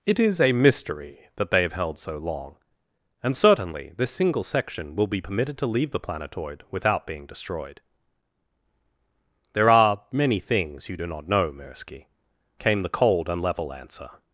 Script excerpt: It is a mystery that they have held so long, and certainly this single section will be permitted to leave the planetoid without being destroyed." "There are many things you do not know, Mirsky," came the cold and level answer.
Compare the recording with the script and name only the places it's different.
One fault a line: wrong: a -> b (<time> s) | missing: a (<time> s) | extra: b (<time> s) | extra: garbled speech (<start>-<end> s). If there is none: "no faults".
no faults